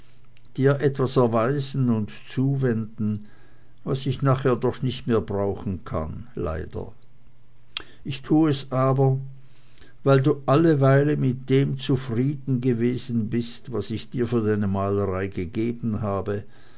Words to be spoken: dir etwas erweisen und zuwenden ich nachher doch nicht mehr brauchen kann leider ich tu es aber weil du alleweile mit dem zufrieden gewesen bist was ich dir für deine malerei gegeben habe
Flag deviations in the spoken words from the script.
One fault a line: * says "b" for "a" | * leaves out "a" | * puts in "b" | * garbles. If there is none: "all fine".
* puts in "was"